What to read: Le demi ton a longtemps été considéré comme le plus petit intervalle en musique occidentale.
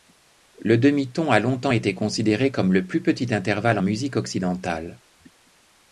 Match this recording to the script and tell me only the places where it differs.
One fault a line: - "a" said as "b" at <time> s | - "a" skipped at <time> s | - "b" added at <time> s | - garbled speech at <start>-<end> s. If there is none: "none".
none